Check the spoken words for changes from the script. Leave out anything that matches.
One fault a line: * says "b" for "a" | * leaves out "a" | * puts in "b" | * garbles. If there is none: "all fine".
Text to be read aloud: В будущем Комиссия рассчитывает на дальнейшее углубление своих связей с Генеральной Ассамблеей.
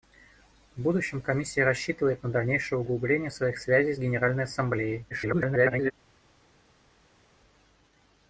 * garbles